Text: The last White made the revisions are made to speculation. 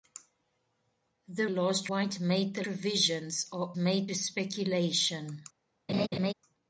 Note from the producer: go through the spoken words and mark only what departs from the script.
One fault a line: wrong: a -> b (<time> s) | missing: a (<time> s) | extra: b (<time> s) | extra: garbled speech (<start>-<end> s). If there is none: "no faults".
no faults